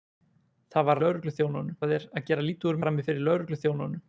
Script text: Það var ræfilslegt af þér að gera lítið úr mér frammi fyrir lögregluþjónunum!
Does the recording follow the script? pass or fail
fail